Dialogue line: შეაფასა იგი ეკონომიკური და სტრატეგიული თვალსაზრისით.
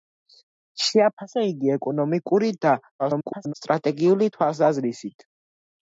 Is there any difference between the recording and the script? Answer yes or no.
yes